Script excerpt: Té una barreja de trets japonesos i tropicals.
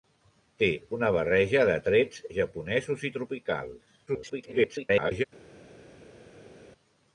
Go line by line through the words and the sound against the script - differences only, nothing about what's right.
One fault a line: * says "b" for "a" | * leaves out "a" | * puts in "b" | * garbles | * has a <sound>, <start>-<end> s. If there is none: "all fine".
* garbles